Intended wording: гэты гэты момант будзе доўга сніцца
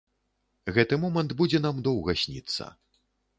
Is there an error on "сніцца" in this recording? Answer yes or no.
no